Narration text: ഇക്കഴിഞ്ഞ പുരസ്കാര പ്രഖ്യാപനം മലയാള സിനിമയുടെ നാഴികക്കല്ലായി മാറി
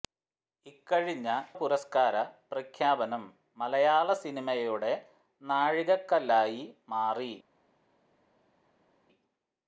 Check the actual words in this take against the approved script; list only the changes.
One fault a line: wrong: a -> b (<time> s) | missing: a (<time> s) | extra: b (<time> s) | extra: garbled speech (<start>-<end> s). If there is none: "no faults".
no faults